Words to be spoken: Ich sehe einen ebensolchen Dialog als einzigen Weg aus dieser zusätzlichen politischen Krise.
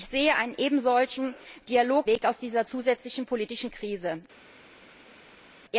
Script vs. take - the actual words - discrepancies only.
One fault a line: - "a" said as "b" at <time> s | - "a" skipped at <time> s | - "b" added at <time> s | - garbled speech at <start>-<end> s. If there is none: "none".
- "als einzigen" skipped at 2.1 s